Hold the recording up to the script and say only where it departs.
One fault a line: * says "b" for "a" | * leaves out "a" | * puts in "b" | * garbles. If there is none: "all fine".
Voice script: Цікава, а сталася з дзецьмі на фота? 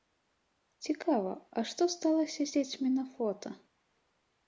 * puts in "што"